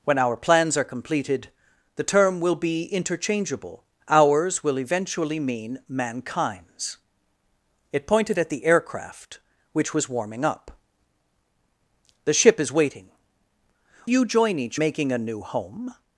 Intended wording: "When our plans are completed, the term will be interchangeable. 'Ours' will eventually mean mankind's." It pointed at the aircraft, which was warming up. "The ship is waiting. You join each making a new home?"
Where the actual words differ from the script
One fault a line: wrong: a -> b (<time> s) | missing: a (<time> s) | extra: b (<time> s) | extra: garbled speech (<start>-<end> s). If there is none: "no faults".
no faults